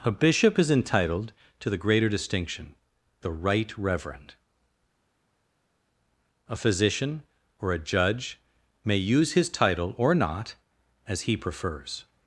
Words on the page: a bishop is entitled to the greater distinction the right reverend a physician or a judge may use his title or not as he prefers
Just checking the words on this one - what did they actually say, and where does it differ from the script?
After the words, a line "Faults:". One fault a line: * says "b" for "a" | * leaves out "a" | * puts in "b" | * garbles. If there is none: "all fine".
a bishop is entitled to the greater distinction the right reverend a physician or a judge may use his title or not as he prefers
Faults:
all fine